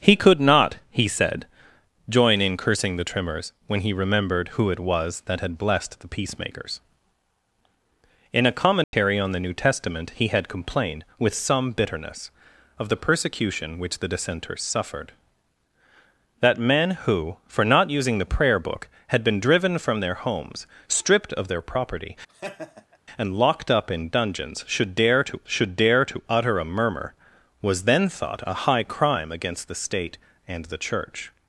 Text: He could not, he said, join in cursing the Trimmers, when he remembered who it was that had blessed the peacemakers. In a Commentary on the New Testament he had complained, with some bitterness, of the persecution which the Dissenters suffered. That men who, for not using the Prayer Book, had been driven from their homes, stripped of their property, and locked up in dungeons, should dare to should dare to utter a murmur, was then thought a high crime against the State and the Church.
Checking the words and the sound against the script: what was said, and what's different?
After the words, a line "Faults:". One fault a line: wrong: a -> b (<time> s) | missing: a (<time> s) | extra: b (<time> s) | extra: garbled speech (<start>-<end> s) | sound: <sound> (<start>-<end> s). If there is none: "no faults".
He could not, he said, join in cursing the Trimmers, when he remembered who it was that had blessed the peacemakers. In a Commentary on the New Testament he had complained, with some bitterness, of the persecution which the Dissenters suffered. That men who, for not using the Prayer Book, had been driven from their homes, stripped of their property, and locked up in dungeons, should dare to should dare to utter a murmur, was then thought a high crime against the State and the Church.
Faults:
sound: dropout (8.8-8.9 s)
sound: laugh (22.3-23.0 s)